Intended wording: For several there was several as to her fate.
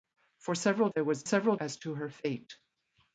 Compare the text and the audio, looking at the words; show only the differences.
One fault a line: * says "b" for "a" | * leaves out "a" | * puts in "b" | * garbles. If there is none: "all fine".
all fine